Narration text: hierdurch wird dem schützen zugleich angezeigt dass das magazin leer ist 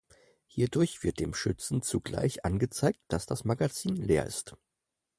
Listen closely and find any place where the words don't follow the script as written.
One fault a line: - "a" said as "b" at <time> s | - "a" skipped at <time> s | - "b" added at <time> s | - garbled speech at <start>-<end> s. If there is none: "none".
none